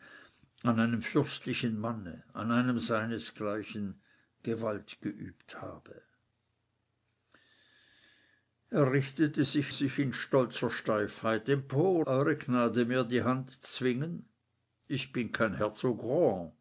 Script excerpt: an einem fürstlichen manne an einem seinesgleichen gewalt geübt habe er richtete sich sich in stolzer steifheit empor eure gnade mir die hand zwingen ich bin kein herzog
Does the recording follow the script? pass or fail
pass